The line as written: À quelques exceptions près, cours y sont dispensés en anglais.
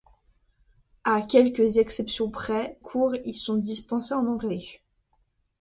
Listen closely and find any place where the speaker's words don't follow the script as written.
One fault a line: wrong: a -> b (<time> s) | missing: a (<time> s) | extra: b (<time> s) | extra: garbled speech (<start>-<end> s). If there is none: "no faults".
no faults